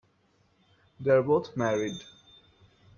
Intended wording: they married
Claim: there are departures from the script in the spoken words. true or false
true